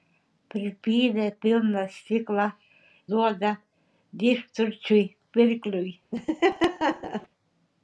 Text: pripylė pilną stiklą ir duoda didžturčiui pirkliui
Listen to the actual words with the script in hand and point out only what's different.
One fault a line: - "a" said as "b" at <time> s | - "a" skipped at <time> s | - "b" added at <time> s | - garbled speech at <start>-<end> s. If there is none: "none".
- "ir" skipped at 2.5 s